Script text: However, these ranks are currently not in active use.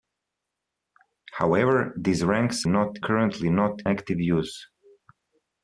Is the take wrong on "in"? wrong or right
wrong